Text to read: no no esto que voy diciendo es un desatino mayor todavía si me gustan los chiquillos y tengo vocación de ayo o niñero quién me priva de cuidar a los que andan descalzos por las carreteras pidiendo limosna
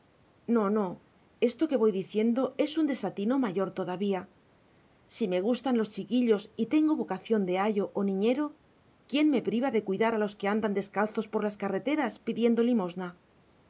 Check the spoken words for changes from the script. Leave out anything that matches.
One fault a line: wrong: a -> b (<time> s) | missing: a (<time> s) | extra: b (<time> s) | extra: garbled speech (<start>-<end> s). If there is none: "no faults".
no faults